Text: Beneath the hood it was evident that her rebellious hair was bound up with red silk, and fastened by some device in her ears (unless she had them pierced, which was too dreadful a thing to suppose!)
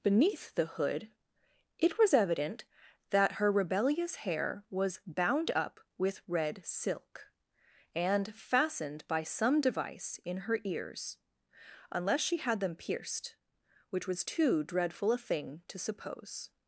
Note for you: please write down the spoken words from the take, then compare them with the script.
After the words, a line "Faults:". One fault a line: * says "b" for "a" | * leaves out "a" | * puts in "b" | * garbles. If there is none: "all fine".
Beneath the hood it was evident that her rebellious hair was bound up with red silk, and fastened by some device in her ears (unless she had them pierced, which was too dreadful a thing to suppose!)
Faults:
all fine